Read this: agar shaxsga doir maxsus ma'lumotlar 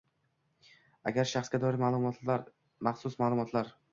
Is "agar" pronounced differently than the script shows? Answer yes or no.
no